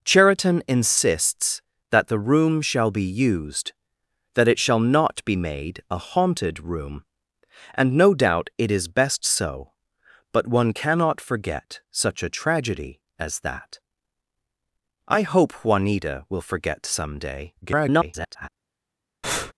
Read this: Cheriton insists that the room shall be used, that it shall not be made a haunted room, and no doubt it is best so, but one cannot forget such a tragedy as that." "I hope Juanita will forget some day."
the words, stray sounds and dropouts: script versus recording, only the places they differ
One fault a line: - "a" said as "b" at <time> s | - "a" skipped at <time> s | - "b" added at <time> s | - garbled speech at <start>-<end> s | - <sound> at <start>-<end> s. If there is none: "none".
- garbled speech at 17.6-18.5 s
- breath at 19.2-19.5 s